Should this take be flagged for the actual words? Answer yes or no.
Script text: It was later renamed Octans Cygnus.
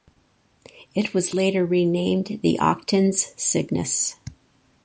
yes